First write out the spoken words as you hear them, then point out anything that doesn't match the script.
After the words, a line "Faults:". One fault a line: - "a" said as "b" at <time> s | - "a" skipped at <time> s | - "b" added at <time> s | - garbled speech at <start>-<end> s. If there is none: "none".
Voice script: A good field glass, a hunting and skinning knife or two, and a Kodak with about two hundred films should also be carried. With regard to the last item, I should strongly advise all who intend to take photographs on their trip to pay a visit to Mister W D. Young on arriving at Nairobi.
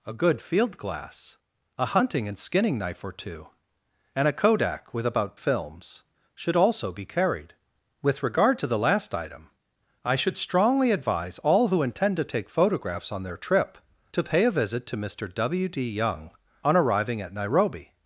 A good field glass, a hunting and skinning knife or two, and a Kodak with about films should also be carried. With regard to the last item, I should strongly advise all who intend to take photographs on their trip to pay a visit to Mister W D. Young on arriving at Nairobi.
Faults:
- "two hundred" skipped at 5.4 s